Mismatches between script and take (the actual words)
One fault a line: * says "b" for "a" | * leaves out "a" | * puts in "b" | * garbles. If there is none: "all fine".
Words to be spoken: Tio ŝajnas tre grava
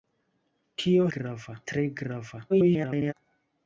* says "grava" for "ŝajnas"
* garbles